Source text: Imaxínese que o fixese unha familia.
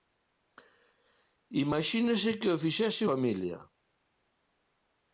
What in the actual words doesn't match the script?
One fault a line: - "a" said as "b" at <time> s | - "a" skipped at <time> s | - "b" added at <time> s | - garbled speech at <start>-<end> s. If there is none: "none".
- "unha" skipped at 3.0 s